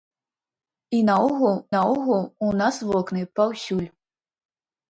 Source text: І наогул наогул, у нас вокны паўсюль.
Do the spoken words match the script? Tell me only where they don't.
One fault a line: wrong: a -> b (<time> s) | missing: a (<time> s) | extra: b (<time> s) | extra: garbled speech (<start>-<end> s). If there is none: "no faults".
no faults